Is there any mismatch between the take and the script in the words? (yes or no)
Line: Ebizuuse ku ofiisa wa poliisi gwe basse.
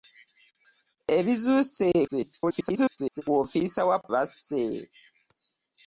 yes